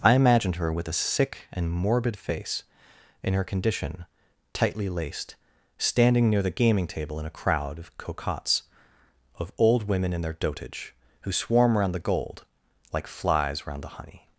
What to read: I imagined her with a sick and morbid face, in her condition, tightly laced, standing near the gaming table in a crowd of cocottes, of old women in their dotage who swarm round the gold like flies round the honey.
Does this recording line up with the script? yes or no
yes